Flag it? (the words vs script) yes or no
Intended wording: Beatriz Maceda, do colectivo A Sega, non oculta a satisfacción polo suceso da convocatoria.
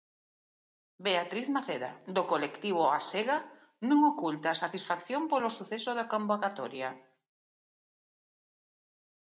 no